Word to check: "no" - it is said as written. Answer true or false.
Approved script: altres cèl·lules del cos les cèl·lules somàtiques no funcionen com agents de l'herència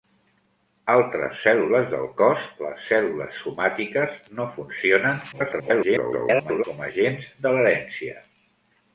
true